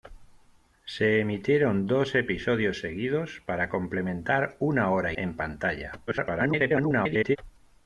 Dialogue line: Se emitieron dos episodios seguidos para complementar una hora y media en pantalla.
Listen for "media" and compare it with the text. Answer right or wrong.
wrong